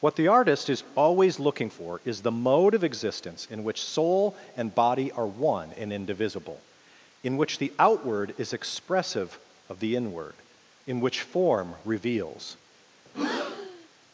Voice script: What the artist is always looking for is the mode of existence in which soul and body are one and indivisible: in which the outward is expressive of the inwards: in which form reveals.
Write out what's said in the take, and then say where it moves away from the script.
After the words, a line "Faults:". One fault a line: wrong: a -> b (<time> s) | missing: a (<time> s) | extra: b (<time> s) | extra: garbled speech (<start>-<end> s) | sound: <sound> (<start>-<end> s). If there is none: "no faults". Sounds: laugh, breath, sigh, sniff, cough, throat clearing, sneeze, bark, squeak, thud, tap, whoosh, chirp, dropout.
What the artist is always looking for is the mode of existence in which soul and body are one and indivisible: in which the outward is expressive of the inward: in which form reveals.
Faults:
wrong: inwards -> inward (10.0 s)
sound: breath (13.1-13.9 s)